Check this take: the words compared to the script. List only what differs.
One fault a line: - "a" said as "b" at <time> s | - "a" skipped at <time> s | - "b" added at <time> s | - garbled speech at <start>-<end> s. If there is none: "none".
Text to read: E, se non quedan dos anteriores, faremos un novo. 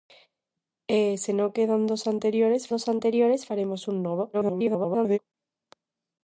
- "dos anteriores" added at 2.7 s
- garbled speech at 4.3-5.2 s